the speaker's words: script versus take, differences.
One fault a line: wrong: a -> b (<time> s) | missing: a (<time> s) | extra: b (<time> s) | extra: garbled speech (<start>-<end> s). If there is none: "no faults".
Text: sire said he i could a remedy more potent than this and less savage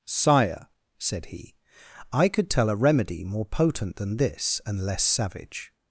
extra: tell (2.5 s)